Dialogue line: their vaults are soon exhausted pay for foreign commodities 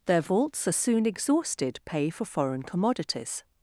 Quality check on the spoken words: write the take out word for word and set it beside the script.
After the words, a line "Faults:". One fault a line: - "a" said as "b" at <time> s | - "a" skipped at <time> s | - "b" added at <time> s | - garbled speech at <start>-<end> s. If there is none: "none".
their vaults are soon exhausted pay for foreign commodities
Faults:
none